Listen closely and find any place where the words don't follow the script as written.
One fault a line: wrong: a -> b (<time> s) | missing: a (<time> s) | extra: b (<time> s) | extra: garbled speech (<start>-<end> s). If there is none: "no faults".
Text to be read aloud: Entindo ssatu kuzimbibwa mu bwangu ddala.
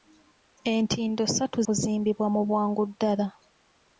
no faults